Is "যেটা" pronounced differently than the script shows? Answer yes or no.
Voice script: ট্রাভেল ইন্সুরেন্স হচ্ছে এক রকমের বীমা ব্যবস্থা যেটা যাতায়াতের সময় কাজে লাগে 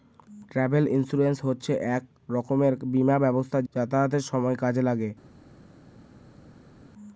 yes